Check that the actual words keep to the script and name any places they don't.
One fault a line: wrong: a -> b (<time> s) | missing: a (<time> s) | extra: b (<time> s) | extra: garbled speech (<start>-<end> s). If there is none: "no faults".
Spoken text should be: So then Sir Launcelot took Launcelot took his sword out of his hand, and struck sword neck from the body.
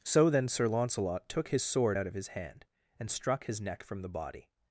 missing: Launcelot took (1.5 s)
wrong: sword -> his (3.4 s)